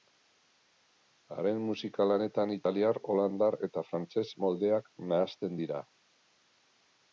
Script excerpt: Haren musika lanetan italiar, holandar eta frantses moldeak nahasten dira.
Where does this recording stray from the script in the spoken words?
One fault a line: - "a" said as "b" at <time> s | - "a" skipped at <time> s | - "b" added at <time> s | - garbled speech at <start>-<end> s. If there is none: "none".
none